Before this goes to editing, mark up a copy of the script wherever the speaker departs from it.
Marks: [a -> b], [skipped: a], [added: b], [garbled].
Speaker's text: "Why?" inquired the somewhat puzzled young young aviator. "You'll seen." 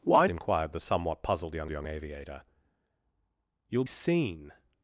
"Why?" inquired the somewhat puzzled young young aviator. "You'll seen."